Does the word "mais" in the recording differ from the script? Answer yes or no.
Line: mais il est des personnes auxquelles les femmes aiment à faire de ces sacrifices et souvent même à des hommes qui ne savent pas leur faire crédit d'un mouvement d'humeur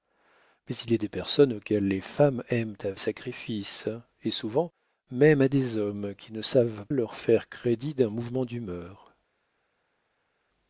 no